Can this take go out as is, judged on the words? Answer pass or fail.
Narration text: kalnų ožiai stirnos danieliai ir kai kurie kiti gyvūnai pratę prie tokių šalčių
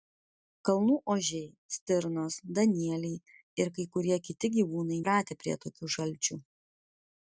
pass